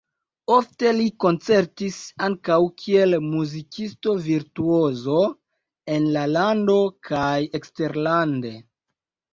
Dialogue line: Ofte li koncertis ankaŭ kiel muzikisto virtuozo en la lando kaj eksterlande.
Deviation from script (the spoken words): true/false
false